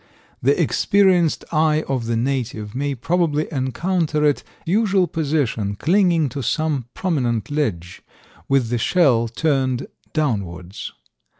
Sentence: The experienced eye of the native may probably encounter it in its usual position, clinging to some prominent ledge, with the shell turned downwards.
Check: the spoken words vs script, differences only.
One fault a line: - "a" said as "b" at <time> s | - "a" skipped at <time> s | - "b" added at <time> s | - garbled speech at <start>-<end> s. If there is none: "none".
- "in its" skipped at 4.4 s